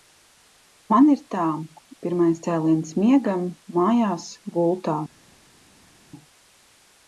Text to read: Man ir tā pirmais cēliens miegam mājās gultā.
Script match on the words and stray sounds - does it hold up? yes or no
yes